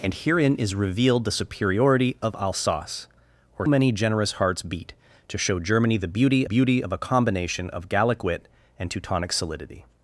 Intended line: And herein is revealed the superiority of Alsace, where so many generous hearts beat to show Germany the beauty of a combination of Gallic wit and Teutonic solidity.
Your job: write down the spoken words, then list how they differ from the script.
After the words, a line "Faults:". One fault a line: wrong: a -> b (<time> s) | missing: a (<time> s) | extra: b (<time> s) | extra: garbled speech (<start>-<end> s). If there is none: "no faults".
And herein is revealed the superiority of Alsace, where many generous hearts beat to show Germany the beauty beauty of a combination of Gallic wit and Teutonic solidity.
Faults:
missing: so (3.7 s)
extra: beauty (6.4 s)